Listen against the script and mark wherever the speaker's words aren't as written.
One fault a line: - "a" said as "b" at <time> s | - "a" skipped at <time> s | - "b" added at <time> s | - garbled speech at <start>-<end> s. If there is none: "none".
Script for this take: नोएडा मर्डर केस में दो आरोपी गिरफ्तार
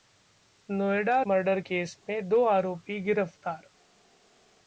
none